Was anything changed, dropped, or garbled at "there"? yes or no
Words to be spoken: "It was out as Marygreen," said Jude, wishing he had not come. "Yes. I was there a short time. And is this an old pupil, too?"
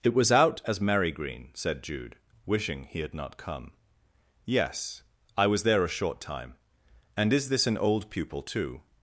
no